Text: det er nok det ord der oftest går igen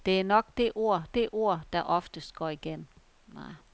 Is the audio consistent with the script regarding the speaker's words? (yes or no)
no